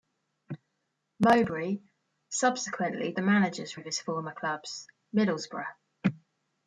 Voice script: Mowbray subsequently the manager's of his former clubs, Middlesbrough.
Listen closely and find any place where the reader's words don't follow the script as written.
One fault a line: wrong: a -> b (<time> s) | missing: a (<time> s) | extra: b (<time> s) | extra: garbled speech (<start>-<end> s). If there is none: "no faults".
no faults